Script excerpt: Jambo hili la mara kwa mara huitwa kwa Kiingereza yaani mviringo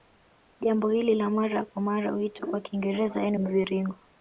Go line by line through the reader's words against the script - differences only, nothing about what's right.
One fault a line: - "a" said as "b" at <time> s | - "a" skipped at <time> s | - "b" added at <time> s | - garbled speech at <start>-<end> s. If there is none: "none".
none